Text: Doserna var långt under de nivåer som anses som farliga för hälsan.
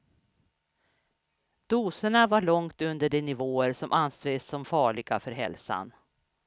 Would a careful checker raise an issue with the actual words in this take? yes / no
no